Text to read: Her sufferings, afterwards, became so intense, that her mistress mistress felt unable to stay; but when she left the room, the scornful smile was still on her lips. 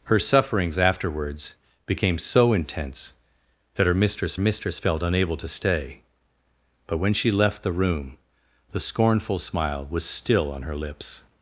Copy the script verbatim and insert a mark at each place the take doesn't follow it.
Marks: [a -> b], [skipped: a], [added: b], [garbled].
Her sufferings, afterwards, became so intense, that her mistress mistress felt unable to stay; but when she left the room, the scornful smile was still on her lips.